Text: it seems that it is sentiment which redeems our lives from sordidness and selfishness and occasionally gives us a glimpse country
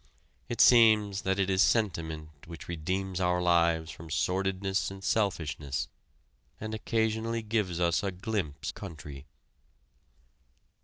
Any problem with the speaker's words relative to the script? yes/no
no